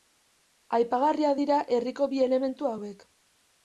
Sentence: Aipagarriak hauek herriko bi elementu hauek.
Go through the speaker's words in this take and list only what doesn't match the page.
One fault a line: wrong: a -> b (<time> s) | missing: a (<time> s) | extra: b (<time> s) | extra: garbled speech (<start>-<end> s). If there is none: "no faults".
wrong: hauek -> dira (1.4 s)